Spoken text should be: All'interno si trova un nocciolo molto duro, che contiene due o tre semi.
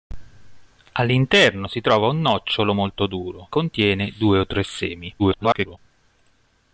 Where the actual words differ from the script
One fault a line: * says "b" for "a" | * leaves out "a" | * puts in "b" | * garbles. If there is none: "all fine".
* leaves out "che"
* garbles